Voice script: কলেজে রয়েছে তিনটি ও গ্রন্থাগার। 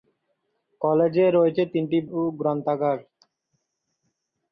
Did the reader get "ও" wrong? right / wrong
right